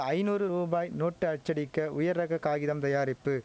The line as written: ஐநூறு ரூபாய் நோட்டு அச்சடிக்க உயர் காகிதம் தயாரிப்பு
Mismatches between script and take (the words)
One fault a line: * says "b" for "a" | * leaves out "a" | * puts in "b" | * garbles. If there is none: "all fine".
* puts in "ரக"